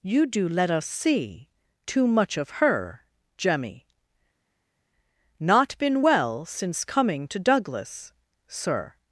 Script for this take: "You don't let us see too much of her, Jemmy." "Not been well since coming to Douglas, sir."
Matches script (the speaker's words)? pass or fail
fail